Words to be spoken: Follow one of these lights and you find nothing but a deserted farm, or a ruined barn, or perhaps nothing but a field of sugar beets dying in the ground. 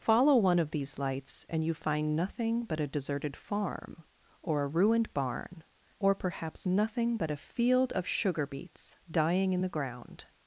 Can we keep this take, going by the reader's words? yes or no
yes